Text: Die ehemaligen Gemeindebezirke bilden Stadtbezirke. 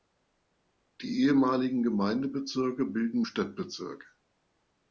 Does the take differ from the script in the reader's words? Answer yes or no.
no